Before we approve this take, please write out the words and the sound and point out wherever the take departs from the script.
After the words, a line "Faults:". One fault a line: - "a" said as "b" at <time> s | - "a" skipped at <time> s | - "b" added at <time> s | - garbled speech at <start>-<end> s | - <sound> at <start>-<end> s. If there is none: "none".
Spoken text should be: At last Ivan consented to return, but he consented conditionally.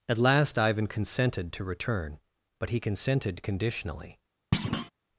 At last Ivan consented to return, but he consented conditionally.
Faults:
- thud at 4.5-4.9 s